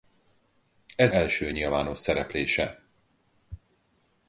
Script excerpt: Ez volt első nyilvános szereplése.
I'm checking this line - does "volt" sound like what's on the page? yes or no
no